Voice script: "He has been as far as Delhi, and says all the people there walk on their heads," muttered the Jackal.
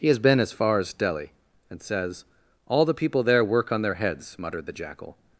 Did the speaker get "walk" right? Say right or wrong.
wrong